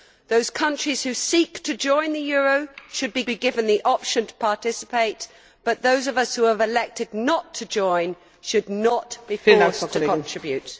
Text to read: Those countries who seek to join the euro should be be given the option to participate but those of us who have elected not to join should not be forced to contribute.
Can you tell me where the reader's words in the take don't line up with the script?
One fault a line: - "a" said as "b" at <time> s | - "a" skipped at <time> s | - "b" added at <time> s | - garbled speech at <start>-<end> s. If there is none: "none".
none